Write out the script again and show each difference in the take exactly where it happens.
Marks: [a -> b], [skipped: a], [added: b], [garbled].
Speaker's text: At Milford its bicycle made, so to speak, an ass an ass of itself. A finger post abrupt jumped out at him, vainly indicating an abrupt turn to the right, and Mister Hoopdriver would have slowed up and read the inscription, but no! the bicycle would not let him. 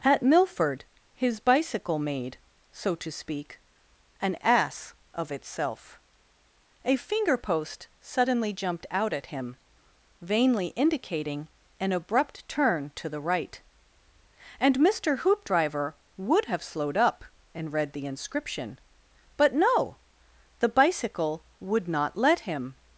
At Milford [its -> his] bicycle made, so to speak, an ass [skipped: an ass] of itself. A finger post [abrupt -> suddenly] jumped out at him, vainly indicating an abrupt turn to the right, and Mister Hoopdriver would have slowed up and read the inscription, but no! the bicycle would not let him.